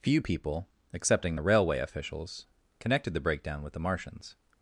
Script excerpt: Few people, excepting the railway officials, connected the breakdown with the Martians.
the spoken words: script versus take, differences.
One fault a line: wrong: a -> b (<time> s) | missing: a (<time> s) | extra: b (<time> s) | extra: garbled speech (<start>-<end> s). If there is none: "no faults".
no faults